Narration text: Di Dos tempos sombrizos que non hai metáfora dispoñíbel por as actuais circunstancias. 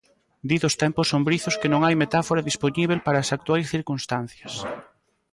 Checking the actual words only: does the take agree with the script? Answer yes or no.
no